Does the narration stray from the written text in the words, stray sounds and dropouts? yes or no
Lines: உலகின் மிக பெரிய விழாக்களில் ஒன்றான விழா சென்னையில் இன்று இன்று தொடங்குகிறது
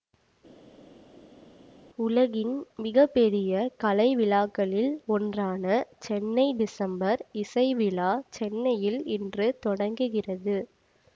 yes